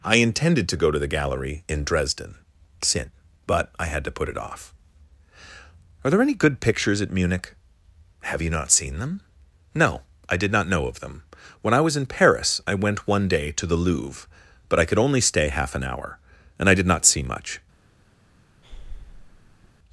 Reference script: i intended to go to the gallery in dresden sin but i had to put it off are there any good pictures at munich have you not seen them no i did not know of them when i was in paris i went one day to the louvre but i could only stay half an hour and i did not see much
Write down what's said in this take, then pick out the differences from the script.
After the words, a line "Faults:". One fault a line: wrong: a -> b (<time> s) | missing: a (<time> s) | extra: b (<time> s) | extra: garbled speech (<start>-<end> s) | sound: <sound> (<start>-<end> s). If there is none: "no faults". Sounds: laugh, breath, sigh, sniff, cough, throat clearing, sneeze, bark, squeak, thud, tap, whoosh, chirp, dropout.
i intended to go to the gallery in dresden sin but i had to put it off are there any good pictures at munich have you not seen them no i did not know of them when i was in paris i went one day to the louvre but i could only stay half an hour and i did not see much
Faults:
sound: breath (18.6-19.7 s)